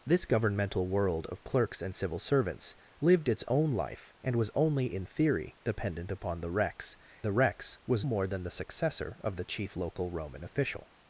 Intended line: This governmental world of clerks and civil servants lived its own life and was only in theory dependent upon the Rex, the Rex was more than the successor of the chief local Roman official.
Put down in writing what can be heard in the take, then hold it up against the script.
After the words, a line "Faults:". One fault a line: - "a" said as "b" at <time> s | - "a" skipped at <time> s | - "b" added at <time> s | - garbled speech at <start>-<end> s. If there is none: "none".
This governmental world of clerks and civil servants lived its own life and was only in theory dependent upon the Rex, the Rex was more than the successor of the chief local Roman official.
Faults:
none